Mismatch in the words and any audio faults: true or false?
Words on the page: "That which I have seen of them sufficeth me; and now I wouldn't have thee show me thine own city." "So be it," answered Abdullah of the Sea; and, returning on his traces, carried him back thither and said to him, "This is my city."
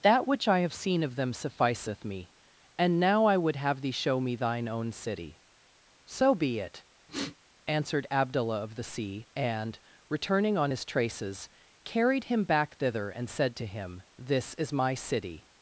true